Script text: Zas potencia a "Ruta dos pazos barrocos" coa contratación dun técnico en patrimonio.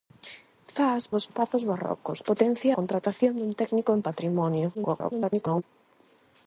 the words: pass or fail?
fail